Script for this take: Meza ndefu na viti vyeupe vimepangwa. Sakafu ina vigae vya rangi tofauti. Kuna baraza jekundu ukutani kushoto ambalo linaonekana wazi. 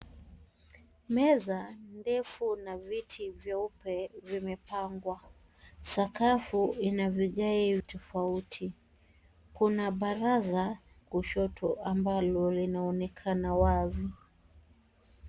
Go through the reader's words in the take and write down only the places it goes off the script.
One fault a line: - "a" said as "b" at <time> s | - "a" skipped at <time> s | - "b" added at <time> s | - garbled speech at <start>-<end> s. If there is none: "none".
- "vya rangi" skipped at 7.8 s
- "jekundu ukutani" skipped at 10.8 s